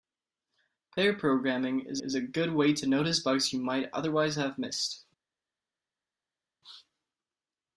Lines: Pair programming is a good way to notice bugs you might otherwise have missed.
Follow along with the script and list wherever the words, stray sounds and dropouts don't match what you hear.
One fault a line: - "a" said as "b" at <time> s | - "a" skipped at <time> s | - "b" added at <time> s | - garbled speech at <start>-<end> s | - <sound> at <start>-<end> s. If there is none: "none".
- "is" added at 2.0 s